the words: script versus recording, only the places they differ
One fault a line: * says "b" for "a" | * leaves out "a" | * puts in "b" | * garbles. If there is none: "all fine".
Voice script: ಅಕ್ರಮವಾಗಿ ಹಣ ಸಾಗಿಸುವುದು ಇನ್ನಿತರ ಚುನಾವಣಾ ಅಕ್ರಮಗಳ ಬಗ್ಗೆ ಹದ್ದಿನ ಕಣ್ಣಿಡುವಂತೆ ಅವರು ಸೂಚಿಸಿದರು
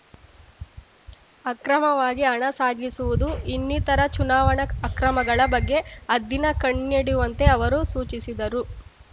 all fine